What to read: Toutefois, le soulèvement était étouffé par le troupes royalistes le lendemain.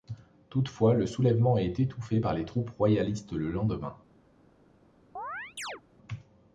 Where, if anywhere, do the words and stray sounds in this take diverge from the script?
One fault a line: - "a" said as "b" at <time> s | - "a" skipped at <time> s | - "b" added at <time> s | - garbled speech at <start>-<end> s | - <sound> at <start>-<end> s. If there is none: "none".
- "était" said as "est" at 1.6 s
- "le" said as "les" at 2.3 s
- chirp at 5.2-5.8 s